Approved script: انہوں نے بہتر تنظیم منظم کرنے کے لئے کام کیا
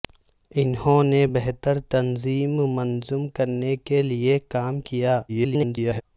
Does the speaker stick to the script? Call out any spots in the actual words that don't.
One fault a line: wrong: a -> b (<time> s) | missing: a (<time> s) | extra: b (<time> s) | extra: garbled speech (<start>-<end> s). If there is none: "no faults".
extra: garbled speech (5.3-6.0 s)